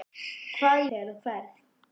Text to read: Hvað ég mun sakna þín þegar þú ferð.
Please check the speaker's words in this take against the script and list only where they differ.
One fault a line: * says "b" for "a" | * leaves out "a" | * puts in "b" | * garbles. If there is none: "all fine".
* leaves out "mun sakna þín"